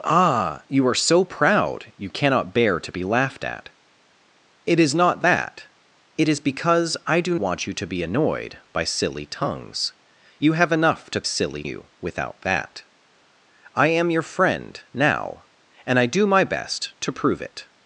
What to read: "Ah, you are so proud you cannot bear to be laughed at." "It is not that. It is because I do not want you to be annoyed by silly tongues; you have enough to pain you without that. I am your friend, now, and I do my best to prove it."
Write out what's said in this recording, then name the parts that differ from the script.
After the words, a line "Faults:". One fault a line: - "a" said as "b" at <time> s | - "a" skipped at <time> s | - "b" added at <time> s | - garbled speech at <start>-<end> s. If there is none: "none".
"Ah, you are so proud you cannot bear to be laughed at." "It is not that. It is because I do want you to be annoyed by silly tongues; you have enough to silly you without that. I am your friend, now, and I do my best to prove it."
Faults:
- "not" skipped at 7.3 s
- "pain" said as "silly" at 11.2 s